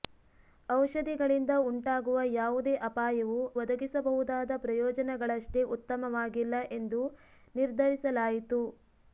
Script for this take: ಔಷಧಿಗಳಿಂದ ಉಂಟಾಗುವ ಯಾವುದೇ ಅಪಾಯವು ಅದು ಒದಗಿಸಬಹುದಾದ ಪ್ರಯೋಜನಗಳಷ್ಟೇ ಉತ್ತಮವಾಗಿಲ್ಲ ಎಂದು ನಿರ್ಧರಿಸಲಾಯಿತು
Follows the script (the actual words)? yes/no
no